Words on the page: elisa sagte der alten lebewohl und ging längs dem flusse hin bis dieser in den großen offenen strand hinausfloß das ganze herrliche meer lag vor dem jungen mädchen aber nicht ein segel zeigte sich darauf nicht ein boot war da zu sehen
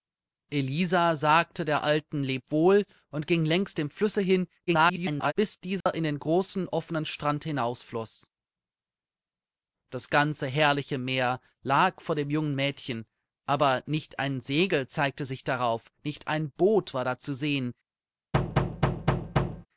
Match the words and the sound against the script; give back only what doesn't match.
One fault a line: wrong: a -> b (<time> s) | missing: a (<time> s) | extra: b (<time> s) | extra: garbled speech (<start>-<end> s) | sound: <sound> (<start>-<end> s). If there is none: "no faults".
extra: garbled speech (4.7-5.3 s)
sound: dropout (5.8-5.9 s)
sound: thud (18.3-19.7 s)